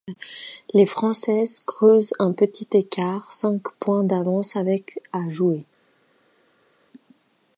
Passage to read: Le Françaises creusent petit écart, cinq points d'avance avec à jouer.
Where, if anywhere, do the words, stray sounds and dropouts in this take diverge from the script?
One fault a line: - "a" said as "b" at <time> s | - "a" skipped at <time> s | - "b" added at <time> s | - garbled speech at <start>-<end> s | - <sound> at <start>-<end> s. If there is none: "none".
- "Le" said as "Les" at 0.7 s
- "un" added at 2.2 s